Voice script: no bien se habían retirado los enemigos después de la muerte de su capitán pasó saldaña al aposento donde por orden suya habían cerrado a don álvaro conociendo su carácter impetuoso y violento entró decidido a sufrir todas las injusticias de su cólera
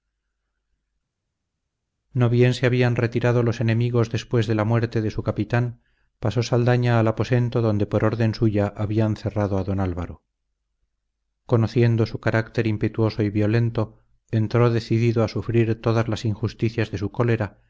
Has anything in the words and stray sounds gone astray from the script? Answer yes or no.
no